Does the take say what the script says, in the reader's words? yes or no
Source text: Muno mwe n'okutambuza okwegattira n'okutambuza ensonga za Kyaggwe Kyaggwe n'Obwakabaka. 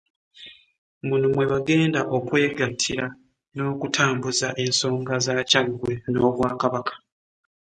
no